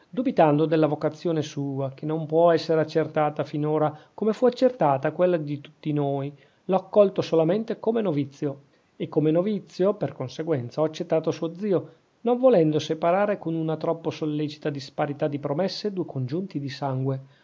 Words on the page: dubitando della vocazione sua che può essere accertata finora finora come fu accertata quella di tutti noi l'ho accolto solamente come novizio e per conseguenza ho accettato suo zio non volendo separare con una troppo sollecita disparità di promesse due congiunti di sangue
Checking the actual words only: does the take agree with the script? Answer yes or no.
no